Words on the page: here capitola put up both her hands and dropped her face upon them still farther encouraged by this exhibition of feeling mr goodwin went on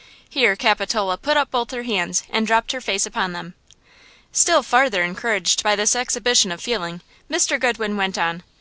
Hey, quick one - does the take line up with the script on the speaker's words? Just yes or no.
yes